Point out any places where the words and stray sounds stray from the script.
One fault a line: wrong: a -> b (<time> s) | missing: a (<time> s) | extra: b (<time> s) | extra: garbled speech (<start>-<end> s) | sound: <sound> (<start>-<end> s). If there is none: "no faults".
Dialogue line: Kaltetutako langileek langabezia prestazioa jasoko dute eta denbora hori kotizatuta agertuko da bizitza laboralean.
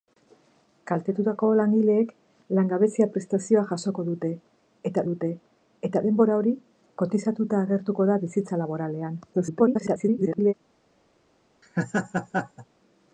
extra: dute eta (5.1 s)
extra: garbled speech (9.3-10.5 s)
sound: laugh (11.6-12.7 s)